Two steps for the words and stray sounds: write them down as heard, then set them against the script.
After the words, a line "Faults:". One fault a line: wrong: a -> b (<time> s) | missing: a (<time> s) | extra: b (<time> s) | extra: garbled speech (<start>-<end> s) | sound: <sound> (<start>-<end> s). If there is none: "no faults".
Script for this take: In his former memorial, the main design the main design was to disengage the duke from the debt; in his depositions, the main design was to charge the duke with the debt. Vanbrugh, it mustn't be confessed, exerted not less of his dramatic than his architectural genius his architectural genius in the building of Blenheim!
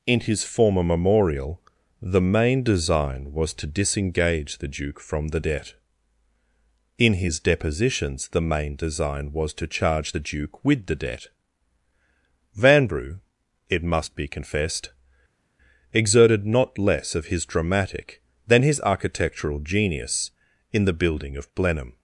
In his former memorial, the main design was to disengage the duke from the debt; in his depositions, the main design was to charge the duke with the debt. Vanbrugh, it must be confessed, exerted not less of his dramatic than his architectural genius in the building of Blenheim!
Faults:
missing: the main design (3.3 s)
wrong: mustn't -> must (13.8 s)
missing: his architectural genius (20.3 s)